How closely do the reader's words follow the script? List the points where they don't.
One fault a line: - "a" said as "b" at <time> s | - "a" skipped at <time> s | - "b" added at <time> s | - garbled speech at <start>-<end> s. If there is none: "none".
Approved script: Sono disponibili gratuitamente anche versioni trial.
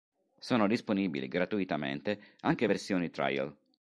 none